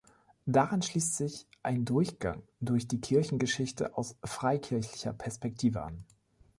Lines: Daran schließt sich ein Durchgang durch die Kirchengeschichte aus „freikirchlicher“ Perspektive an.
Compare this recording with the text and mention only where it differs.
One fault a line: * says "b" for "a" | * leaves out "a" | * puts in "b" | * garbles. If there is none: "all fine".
all fine